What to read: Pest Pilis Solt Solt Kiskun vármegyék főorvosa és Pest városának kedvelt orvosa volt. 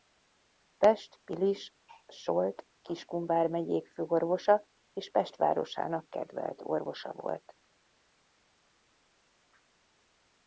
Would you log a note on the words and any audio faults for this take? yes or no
yes